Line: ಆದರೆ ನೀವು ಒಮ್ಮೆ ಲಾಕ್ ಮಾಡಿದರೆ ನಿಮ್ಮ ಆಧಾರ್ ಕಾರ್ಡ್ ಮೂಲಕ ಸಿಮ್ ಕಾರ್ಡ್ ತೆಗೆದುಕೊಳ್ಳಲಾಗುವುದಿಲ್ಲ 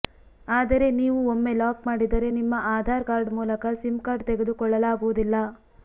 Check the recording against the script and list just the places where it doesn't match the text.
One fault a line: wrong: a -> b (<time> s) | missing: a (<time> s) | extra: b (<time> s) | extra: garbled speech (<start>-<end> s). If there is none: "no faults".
no faults